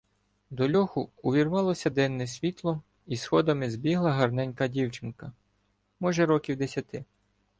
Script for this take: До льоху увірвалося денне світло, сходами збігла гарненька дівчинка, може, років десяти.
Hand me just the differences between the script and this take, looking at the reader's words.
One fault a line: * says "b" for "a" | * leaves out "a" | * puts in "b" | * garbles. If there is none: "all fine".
* puts in "і"